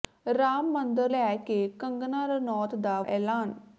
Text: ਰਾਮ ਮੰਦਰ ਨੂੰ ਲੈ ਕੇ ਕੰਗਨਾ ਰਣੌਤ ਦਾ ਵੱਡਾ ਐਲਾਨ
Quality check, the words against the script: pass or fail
fail